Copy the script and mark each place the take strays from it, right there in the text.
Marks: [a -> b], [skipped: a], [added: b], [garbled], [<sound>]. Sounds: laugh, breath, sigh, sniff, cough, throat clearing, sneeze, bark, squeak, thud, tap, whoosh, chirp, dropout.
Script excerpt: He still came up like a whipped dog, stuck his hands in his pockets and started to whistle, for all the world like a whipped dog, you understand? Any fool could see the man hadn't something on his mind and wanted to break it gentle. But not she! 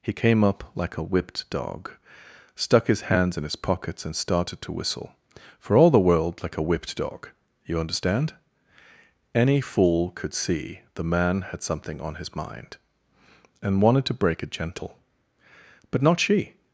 He [skipped: still] came up like a whipped dog, stuck his hands in his pockets and started to whistle, for all the world like a whipped dog, you understand? Any fool could see the man [hadn't -> had] something on his mind and wanted to break it gentle. But not she!